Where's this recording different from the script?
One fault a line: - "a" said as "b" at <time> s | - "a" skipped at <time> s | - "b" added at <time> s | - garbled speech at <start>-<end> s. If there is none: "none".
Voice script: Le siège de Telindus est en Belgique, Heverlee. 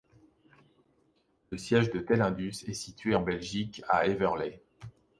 - "situé" added at 2.7 s
- "à" added at 3.9 s